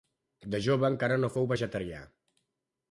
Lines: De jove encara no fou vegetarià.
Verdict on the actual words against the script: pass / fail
pass